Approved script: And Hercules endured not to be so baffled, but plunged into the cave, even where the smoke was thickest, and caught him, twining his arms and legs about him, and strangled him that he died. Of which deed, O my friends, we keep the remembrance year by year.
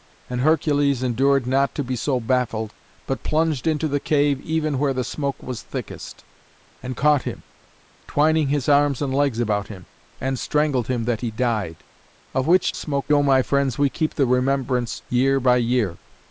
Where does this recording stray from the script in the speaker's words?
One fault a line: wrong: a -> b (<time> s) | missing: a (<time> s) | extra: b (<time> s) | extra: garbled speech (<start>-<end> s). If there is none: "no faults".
wrong: deed -> smoke (12.7 s)